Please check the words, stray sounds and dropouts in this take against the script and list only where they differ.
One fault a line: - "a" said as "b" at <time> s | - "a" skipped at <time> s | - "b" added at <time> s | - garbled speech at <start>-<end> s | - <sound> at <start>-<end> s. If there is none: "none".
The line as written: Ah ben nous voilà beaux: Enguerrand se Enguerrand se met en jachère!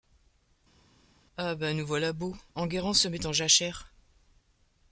- "Enguerrand se" skipped at 3.1 s